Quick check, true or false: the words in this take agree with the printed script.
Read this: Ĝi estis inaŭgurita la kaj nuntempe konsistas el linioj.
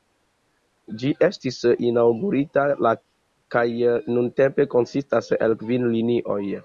false